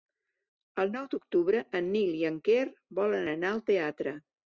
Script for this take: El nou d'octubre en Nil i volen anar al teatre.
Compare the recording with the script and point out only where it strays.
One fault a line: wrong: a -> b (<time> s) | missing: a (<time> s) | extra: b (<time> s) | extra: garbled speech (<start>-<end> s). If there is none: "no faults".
extra: en Quer (2.3 s)